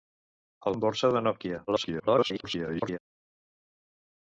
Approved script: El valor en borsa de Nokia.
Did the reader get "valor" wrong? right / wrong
wrong